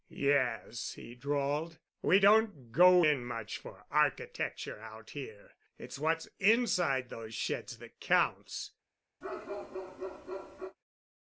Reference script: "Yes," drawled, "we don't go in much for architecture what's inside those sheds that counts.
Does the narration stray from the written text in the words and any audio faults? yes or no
yes